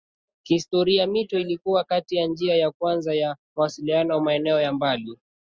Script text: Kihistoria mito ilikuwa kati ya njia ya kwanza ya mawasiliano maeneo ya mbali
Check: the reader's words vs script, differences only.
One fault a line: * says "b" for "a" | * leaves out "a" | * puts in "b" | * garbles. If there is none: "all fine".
all fine